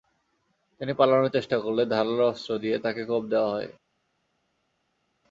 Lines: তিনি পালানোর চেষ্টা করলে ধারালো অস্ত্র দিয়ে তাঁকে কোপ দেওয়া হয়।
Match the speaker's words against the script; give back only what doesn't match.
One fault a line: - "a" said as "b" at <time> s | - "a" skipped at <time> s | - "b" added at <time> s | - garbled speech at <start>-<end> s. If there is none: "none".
none